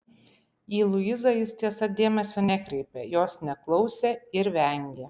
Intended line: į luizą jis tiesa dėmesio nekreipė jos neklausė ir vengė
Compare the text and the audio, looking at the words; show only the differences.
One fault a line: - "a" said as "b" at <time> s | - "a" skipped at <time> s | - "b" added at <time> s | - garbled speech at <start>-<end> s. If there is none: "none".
none